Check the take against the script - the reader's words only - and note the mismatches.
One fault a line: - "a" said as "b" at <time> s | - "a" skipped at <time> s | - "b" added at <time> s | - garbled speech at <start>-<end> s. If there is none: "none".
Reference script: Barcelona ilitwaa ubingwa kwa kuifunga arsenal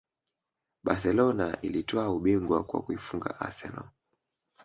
none